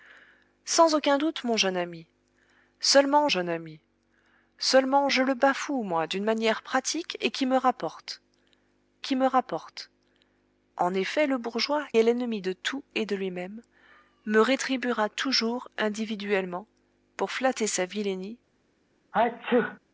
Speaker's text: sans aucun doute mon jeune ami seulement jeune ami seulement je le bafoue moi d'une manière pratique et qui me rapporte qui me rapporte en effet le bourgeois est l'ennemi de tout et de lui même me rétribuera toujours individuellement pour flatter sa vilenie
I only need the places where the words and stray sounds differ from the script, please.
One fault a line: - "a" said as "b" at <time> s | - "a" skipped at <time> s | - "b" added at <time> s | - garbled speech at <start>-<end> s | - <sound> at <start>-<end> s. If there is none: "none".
- sneeze at 19.1-19.8 s